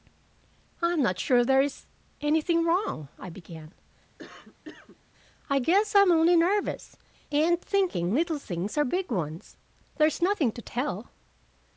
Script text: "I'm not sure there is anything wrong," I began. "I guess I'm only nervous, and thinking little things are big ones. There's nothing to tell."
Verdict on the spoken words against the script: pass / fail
pass